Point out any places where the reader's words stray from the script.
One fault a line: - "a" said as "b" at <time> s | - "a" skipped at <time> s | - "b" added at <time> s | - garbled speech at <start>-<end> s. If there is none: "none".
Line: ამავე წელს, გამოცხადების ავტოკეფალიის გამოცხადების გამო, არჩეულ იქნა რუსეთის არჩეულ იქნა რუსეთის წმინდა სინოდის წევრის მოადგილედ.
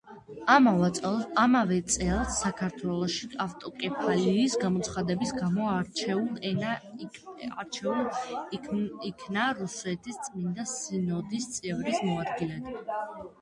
- "გამოცხადების" said as "საქართველოში" at 2.5 s
- "არჩეულ იქნა რუსეთის" skipped at 10.2 s